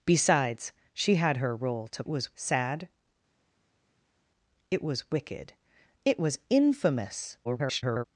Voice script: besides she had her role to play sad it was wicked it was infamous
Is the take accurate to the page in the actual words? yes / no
no